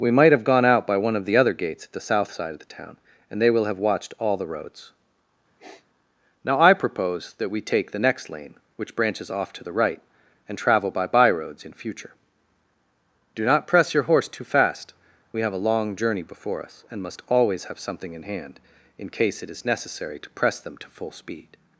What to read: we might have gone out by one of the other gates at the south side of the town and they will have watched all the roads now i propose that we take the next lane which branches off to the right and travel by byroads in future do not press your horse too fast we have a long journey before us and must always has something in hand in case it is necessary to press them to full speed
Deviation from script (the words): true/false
true